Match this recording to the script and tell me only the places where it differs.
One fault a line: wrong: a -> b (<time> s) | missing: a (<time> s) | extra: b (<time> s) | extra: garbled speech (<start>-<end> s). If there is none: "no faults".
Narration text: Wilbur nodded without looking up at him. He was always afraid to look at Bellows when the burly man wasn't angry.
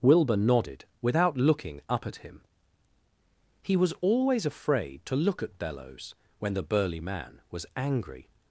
wrong: wasn't -> was (7.5 s)